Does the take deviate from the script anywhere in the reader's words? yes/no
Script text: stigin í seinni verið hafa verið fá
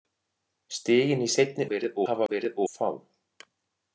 no